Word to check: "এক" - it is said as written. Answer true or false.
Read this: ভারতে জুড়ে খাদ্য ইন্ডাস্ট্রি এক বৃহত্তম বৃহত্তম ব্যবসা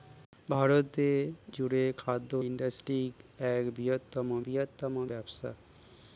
true